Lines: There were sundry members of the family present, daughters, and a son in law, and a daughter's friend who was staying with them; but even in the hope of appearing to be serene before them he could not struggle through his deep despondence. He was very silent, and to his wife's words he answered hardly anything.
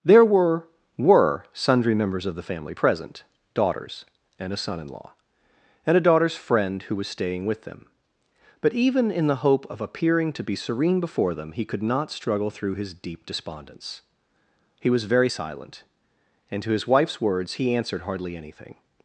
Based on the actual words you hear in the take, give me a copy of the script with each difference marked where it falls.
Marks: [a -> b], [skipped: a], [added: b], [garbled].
There were [added: were] sundry members of the family present, daughters, and a son in law, and a daughter's friend who was staying with them; but even in the hope of appearing to be serene before them he could not struggle through his deep despondence. He was very silent, and to his wife's words he answered hardly anything.